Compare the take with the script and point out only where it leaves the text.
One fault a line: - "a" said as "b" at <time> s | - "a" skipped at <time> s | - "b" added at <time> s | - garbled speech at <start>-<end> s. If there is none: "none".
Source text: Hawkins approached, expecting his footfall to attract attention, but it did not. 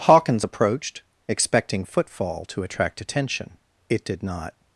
- "his" skipped at 1.8 s
- "but" skipped at 3.6 s